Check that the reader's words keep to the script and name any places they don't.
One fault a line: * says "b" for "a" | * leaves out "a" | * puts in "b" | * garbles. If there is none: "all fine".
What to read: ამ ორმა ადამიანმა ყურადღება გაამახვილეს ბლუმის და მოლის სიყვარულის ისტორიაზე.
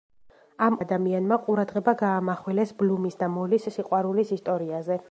* leaves out "ორმა"